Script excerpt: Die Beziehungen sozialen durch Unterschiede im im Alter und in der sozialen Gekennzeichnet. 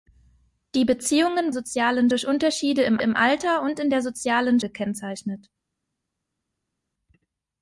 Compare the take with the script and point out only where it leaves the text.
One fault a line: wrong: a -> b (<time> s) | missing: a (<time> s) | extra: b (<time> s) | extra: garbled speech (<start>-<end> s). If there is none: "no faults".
no faults